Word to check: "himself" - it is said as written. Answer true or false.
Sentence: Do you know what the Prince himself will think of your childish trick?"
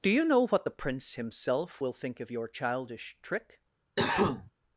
true